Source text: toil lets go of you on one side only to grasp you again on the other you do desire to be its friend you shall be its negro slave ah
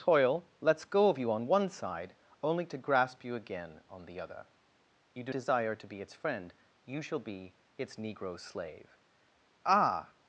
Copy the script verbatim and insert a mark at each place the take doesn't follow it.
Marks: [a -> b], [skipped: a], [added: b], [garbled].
toil lets go of you on one side only to grasp you again on the other you do desire to be its friend you shall be its negro slave ah